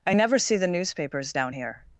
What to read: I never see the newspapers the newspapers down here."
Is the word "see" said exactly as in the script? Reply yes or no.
yes